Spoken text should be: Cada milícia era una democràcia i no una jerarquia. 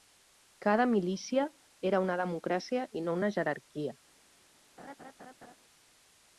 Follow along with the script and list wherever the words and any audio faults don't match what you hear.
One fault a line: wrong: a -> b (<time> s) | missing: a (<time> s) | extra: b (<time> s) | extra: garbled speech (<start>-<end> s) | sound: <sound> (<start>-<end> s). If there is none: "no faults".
sound: laugh (4.8-5.6 s)